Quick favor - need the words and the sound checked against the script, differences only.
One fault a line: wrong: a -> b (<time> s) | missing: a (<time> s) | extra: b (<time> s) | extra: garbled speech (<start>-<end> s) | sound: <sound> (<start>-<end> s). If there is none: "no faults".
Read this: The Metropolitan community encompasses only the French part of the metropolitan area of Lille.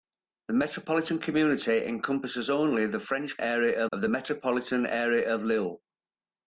wrong: part -> area (3.4 s)